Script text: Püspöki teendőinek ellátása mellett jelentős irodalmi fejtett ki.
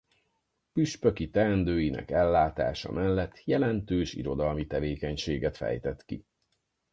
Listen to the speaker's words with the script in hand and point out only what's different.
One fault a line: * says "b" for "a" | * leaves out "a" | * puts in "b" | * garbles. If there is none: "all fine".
* puts in "tevékenységet"